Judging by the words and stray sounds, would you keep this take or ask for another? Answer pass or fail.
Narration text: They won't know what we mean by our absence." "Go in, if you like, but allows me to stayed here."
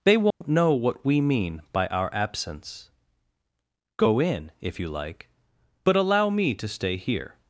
fail